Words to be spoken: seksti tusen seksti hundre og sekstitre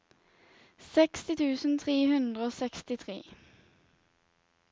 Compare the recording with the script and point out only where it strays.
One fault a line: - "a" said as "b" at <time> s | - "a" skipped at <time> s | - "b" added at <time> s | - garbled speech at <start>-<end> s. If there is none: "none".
- "seksti" said as "tre" at 1.8 s